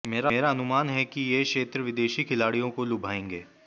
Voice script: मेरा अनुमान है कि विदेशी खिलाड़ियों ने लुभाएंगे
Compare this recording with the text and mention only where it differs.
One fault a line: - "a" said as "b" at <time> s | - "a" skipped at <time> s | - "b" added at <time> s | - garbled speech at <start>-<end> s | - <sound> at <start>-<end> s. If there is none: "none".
- "ये क्षेत्र" added at 1.2 s
- "ने" said as "को" at 2.7 s